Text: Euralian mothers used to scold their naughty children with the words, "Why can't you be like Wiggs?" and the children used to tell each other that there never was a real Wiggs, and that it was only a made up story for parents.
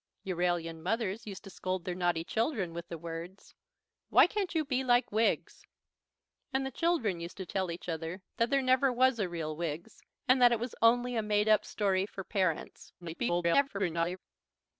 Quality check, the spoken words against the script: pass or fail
fail